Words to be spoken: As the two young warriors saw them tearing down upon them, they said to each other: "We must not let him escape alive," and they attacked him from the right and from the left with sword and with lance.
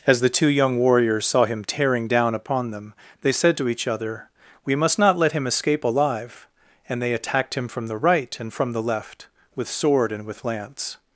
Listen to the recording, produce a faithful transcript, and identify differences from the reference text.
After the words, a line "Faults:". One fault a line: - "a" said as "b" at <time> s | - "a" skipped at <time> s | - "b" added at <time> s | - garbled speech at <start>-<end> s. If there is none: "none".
As the two young warriors saw him tearing down upon them, they said to each other: "We must not let him escape alive," and they attacked him from the right and from the left with sword and with lance.
Faults:
- "them" said as "him" at 1.4 s